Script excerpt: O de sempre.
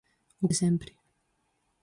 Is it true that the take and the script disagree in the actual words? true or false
false